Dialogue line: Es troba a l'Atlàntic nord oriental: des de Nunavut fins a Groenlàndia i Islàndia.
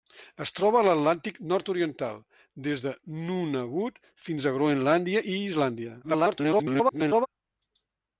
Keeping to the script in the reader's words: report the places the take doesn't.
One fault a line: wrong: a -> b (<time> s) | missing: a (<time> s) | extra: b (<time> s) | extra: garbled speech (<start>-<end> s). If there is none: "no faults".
extra: garbled speech (6.0-7.3 s)